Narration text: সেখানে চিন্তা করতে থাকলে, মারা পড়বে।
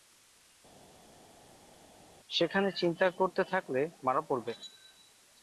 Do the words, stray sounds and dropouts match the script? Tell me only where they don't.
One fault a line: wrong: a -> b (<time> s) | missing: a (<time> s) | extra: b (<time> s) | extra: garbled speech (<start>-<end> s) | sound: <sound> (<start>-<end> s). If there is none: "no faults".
no faults